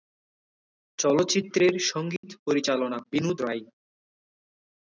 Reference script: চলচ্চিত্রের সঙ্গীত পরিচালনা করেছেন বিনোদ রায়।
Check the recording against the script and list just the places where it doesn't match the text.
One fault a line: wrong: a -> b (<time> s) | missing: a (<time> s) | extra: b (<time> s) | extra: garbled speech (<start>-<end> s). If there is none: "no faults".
missing: করেছেন (3.0 s)